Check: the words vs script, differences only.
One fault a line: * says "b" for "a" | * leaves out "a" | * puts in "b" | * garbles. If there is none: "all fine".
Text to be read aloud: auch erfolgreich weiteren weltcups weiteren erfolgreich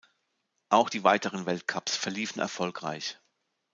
* says "die" for "erfolgreich"
* says "verliefen" for "weiteren"